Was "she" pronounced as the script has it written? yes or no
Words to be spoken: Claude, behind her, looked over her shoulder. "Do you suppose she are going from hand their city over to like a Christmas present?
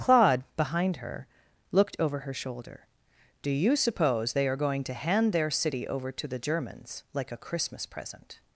no